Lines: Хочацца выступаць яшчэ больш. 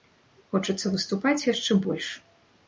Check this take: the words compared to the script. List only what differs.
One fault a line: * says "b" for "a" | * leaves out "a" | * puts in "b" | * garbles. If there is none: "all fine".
all fine